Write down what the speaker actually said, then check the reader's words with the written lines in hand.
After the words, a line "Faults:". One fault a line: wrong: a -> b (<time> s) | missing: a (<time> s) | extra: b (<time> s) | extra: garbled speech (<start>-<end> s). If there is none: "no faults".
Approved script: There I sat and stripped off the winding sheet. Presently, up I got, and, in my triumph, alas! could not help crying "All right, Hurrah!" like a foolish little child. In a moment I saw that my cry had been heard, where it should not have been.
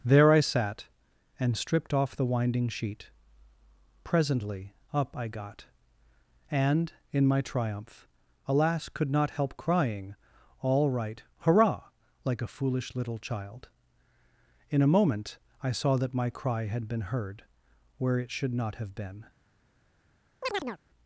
There I sat and stripped off the winding sheet. Presently, up I got, and, in my triumph, alas! could not help crying "All right, Hurrah!" like a foolish little child. In a moment I saw that my cry had been heard, where it should not have been.
Faults:
no faults